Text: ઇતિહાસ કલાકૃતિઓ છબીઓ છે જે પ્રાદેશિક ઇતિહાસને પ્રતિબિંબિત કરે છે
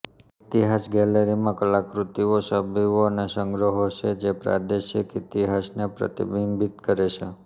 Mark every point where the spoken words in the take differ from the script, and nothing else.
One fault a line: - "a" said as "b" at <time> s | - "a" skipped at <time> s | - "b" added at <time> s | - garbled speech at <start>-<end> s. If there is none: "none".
- "ગેલેરીમાં" added at 0.9 s
- "અને સંગ્રહો" added at 3.1 s